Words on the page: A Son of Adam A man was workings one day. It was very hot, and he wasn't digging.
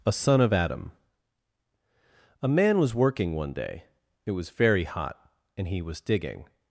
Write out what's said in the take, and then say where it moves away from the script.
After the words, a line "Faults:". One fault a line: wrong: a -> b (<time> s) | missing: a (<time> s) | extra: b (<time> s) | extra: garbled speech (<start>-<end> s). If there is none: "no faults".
A Son of Adam A man was working one day. It was very hot, and he was digging.
Faults:
wrong: workings -> working (3.0 s)
wrong: wasn't -> was (5.8 s)